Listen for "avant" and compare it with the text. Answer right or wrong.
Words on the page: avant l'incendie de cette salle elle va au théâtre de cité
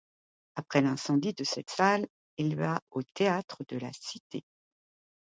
wrong